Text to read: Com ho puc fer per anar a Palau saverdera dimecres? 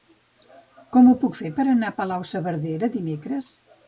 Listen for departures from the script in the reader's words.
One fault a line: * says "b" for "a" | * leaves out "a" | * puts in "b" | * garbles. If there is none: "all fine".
all fine